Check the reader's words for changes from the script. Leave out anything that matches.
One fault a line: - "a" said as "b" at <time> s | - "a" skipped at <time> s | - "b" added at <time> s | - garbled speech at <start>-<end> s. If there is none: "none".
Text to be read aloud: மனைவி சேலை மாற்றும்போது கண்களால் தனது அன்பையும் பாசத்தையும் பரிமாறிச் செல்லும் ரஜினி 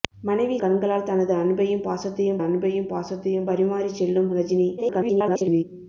- "சேலை மாற்றும்போது கண்களால் தனது" said as "கண்களால் தனது அன்பையும் பாசத்தையும்" at 0.6 s
- garbled speech at 4.8-5.6 s